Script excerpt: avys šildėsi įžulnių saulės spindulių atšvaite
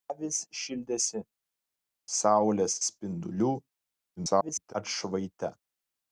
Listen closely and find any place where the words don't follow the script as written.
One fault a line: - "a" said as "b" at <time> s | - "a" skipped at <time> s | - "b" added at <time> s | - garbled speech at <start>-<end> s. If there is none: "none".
- "įžulnių" skipped at 1.2 s
- garbled speech at 4.2-4.7 s